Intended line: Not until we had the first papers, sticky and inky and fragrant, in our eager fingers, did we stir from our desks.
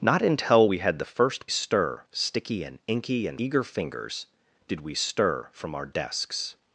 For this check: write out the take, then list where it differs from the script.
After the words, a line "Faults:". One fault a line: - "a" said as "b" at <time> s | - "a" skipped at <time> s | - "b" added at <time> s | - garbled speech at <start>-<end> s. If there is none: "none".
Not until we had the first stir, sticky and inky and eager fingers, did we stir from our desks.
Faults:
- "papers" said as "stir" at 1.5 s
- "fragrant in our" skipped at 3.4 s